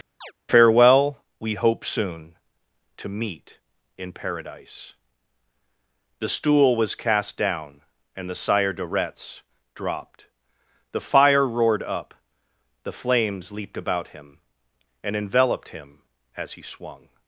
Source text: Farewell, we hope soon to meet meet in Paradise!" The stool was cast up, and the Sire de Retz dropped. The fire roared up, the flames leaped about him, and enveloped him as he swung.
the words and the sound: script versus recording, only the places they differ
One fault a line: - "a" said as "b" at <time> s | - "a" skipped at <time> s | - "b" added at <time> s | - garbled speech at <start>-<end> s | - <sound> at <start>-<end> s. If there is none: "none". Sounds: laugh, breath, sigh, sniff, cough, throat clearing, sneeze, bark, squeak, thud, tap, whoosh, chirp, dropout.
- chirp at 0.2-0.3 s
- "meet" skipped at 3.6 s
- "up" said as "down" at 7.4 s